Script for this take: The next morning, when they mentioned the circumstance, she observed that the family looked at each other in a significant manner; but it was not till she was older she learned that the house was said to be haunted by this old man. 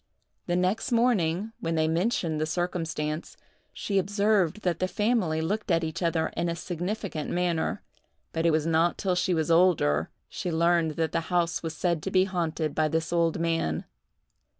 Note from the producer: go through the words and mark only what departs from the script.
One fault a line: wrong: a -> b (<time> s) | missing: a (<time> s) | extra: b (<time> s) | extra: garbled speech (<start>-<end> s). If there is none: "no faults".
no faults